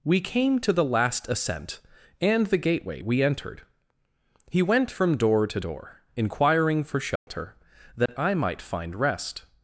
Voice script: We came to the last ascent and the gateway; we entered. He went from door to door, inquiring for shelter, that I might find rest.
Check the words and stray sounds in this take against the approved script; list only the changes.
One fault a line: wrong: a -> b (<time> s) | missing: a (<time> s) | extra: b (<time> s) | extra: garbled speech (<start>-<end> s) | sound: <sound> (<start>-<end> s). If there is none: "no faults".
sound: dropout (7.2-7.3 s)
sound: dropout (8.1-8.1 s)